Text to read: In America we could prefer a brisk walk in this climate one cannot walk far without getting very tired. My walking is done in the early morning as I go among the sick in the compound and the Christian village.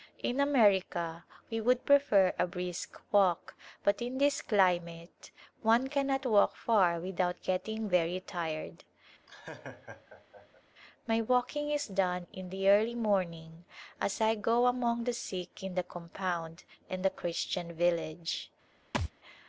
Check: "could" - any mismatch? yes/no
yes